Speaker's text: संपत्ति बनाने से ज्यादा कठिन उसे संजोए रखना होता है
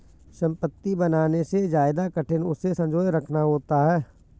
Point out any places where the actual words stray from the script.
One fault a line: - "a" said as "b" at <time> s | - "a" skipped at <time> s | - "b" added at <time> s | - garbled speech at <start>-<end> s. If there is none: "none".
none